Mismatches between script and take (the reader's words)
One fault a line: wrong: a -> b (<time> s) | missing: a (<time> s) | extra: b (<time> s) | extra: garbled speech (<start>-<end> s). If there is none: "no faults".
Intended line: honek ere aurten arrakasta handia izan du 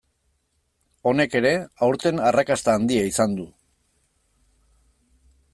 no faults